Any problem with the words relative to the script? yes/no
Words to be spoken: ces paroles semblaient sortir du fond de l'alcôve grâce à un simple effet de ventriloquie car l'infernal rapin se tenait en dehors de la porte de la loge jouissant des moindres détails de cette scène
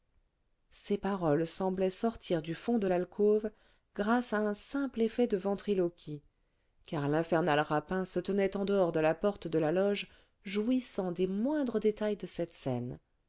no